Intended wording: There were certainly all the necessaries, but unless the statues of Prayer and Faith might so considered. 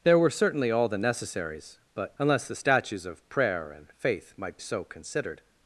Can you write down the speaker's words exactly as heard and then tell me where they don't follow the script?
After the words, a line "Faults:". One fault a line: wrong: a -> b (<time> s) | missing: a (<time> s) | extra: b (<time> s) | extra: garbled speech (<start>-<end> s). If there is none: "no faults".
There were certainly all the necessaries, but unless the statues of Prayer and Faith might so considered.
Faults:
no faults